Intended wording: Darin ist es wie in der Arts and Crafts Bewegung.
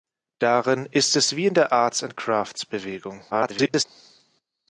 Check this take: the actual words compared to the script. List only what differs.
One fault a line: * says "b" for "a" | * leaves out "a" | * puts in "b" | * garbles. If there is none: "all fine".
* garbles